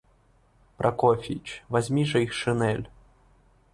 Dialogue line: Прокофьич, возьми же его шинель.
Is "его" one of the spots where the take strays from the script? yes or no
yes